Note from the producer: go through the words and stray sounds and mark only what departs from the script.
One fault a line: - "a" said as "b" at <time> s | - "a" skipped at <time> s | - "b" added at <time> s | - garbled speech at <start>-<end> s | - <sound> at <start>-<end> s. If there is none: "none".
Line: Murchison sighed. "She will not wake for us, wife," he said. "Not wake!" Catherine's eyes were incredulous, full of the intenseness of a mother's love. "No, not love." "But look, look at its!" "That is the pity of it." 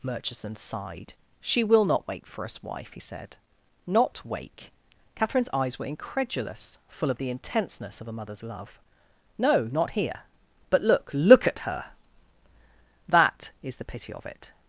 - "love" said as "here" at 9.9 s
- "its" said as "her" at 11.6 s